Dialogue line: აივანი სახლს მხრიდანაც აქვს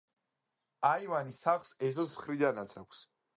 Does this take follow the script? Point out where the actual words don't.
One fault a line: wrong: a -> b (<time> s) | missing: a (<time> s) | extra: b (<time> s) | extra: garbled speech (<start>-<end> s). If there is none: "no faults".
extra: ეზოს (1.9 s)